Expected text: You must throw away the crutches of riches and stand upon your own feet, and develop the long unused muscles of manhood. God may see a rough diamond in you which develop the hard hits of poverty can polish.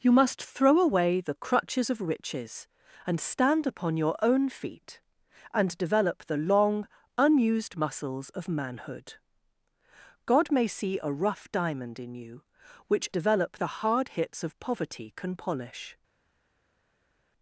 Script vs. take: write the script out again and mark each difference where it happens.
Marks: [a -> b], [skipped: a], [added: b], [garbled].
You must throw away the crutches of riches and stand upon your own feet, and develop the long unused muscles of manhood. God may see a rough diamond in you which develop the hard hits of poverty can polish.